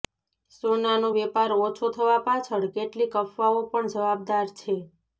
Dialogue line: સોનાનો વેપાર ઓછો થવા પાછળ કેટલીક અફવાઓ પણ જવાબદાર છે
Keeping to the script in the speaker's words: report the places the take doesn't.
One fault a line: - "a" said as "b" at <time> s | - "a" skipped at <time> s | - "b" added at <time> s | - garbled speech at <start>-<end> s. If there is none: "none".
none